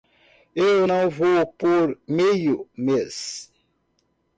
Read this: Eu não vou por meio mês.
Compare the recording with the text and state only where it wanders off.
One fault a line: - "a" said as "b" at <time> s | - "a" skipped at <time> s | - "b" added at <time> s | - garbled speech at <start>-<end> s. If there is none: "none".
none